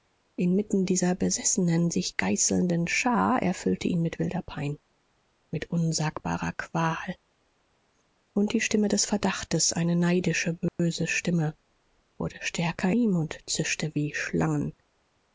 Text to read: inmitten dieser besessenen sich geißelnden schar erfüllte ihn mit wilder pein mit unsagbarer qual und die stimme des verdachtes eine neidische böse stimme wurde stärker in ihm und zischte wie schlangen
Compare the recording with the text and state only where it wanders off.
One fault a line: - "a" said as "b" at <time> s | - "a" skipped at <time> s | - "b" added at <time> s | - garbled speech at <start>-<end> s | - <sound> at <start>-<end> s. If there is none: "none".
- dropout at 10.7-10.8 s
- "in" skipped at 12.9 s